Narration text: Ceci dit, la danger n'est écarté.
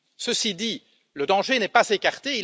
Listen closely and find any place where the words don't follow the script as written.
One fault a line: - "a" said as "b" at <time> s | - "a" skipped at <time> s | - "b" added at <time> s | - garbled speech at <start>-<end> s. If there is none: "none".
- "la" said as "le" at 1.1 s
- "pas" added at 1.7 s